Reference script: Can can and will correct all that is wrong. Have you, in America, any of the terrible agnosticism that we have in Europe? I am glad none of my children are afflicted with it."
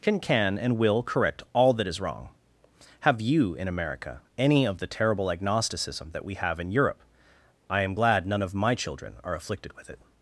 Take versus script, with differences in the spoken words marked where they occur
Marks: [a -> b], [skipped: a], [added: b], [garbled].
Can can and will correct all that is wrong. Have you, in America, any of the terrible agnosticism that we have in Europe? I am glad none of my children are afflicted with it."